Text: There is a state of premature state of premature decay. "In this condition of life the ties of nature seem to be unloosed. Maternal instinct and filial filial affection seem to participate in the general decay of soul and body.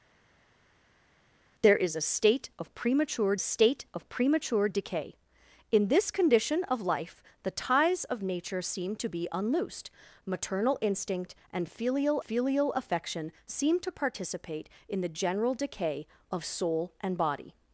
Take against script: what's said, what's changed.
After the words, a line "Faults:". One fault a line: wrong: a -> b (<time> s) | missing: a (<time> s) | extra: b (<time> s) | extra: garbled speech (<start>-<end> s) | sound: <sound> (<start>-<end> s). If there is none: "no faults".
There is a state of premature state of premature decay. "In this condition of life the ties of nature seem to be unloosed. Maternal instinct and filial filial affection seem to participate in the general decay of soul and body.
Faults:
no faults